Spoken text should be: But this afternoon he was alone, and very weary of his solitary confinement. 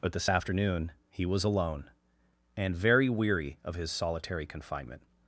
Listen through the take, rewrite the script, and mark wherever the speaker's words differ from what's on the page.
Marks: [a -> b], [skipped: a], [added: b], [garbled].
But this afternoon he was alone, and very weary of his solitary confinement.